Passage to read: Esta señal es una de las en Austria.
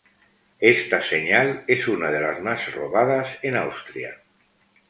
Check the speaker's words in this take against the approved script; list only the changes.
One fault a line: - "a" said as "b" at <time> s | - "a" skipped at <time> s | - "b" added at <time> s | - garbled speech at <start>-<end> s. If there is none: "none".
- "más robadas" added at 2.4 s